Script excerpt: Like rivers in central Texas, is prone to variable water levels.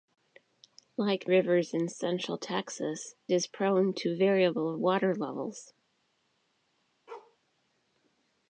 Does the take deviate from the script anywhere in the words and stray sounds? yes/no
yes